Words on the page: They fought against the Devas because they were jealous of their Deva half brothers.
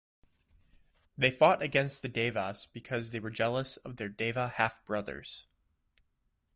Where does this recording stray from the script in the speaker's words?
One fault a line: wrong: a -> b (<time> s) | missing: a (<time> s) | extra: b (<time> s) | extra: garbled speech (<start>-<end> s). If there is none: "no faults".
no faults